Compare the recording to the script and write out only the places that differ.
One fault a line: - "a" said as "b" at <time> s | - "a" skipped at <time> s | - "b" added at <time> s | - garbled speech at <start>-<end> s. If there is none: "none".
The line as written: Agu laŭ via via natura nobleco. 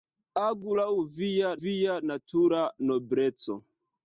none